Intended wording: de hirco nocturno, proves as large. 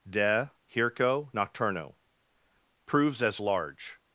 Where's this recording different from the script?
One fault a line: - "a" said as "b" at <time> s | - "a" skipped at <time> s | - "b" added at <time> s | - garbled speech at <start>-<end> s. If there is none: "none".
none